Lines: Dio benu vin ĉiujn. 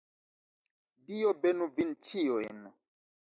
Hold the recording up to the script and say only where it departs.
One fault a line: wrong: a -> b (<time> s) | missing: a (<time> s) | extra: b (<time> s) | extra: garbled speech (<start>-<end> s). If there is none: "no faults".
no faults